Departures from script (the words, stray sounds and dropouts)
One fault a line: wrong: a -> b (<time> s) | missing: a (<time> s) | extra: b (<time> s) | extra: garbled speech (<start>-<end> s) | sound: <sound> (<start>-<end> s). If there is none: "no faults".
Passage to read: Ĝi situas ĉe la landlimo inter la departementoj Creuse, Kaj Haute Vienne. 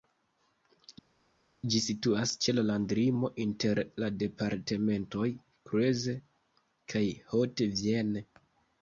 no faults